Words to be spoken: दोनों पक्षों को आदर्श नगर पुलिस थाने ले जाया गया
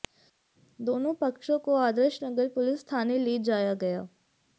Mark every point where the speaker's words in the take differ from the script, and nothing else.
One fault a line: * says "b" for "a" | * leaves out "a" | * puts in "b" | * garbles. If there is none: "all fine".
all fine